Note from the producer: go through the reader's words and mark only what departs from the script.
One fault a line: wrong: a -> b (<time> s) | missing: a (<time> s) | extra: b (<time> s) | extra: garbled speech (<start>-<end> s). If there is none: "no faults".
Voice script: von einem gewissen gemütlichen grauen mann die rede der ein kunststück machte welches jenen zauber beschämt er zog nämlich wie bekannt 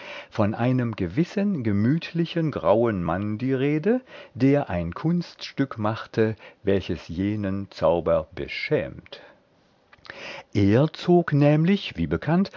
no faults